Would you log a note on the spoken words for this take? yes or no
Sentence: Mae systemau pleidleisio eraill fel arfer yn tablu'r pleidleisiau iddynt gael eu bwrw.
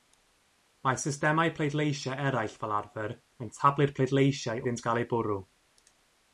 no